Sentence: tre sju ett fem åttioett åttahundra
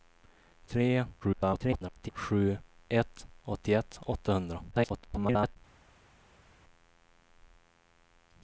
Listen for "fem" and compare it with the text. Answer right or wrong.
wrong